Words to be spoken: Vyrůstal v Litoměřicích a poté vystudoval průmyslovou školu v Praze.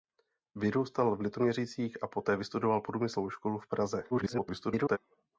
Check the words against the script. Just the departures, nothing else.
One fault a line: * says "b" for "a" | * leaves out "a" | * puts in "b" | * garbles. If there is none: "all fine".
* garbles